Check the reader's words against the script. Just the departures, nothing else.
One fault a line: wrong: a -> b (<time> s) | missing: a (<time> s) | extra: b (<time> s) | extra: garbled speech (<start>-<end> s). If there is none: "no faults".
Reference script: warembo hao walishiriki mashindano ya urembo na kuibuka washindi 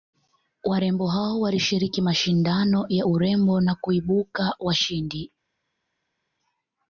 no faults